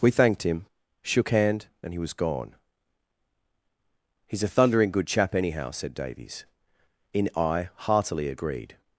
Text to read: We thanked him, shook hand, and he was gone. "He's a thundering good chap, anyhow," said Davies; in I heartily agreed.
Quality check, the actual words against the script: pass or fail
pass